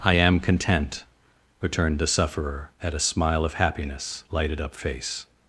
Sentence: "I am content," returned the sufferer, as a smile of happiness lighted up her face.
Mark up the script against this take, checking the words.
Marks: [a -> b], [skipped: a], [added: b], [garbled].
"I am content," returned the sufferer, [as -> at] a smile of happiness lighted up [skipped: her] face.